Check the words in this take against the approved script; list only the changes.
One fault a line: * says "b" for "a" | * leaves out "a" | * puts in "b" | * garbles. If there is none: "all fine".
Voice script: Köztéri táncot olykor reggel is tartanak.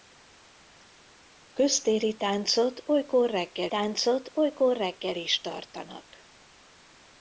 * puts in "táncot olykor reggel"